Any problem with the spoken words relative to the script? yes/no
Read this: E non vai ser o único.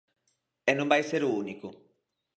no